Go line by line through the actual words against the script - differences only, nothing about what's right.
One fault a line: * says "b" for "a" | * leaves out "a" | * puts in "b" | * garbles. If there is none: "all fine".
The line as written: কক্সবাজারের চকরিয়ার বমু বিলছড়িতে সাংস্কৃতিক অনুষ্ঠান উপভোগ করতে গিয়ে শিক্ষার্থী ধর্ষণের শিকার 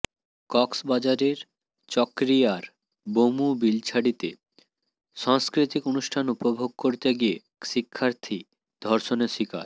all fine